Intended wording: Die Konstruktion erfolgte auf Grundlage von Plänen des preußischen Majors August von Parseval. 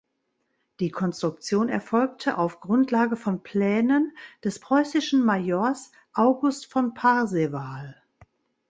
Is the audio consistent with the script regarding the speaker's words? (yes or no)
yes